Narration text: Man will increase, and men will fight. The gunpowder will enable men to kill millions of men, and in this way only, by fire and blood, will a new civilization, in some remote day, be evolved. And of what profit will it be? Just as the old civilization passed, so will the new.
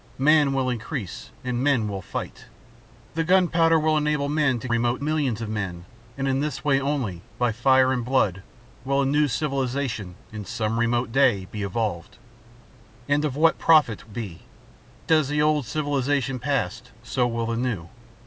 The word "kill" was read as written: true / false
false